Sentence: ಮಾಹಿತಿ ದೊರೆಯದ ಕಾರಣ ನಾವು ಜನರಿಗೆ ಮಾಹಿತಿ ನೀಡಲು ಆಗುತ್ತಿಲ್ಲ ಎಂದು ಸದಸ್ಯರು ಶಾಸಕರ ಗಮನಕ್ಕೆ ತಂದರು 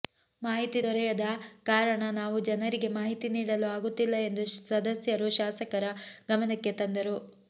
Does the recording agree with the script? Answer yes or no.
yes